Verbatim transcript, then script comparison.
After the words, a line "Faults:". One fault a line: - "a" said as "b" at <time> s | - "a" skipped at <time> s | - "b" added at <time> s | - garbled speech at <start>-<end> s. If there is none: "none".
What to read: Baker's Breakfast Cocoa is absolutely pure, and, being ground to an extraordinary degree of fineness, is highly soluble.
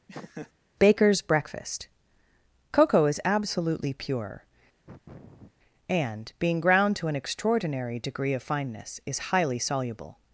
Baker's Breakfast Cocoa is absolutely pure, and, being ground to an extraordinary degree of fineness, is highly soluble.
Faults:
none